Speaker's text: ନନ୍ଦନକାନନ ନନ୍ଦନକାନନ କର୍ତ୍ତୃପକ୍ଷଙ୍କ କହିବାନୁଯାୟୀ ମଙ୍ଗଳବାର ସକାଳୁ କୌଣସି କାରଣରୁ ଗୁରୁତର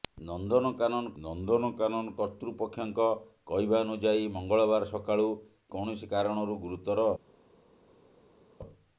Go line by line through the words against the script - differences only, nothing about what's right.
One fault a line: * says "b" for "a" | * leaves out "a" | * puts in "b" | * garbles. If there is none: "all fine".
all fine